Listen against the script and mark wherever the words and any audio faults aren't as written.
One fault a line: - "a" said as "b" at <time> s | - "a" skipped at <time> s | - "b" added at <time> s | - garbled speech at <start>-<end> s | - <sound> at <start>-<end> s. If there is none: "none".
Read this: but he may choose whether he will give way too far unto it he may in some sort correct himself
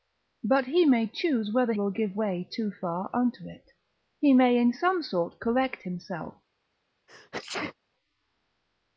- "he" skipped at 1.7 s
- sneeze at 7.1-7.7 s